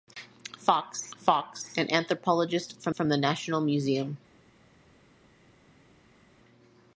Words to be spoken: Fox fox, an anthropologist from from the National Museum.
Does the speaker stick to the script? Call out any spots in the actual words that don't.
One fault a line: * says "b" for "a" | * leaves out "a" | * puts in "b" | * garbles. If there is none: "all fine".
all fine